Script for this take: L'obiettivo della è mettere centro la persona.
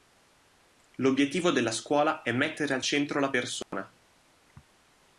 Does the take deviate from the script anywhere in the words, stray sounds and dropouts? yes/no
yes